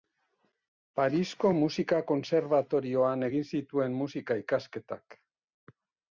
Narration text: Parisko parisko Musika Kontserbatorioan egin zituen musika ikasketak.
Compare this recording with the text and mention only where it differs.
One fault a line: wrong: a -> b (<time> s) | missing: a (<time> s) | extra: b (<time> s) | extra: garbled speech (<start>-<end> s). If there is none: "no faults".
missing: parisko (1.5 s)